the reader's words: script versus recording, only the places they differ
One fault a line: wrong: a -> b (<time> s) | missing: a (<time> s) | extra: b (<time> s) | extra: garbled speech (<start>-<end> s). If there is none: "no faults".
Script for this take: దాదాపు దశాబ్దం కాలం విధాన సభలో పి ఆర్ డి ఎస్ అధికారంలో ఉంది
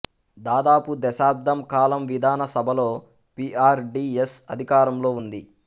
no faults